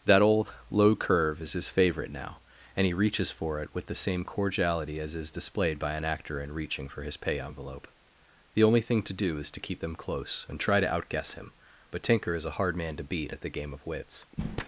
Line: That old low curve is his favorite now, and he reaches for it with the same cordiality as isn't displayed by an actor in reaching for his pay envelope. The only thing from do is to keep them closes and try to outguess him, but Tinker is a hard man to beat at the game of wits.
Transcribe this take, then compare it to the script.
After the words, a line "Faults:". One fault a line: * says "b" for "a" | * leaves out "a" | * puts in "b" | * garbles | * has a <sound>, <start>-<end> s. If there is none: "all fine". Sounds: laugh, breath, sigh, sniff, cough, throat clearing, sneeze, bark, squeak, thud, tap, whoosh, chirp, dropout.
That old low curve is his favorite now, and he reaches for it with the same cordiality as is displayed by an actor in reaching for his pay envelope. The only thing to do is to keep them close and try to outguess him, but Tinker is a hard man to beat at the game of wits.
Faults:
* says "is" for "isn't"
* says "to" for "from"
* says "close" for "closes"